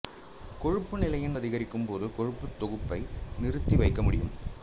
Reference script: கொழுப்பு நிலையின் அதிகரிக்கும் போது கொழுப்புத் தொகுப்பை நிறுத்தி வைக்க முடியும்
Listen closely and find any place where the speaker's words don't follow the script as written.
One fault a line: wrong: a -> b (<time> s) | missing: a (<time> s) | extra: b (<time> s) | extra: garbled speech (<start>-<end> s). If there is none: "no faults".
no faults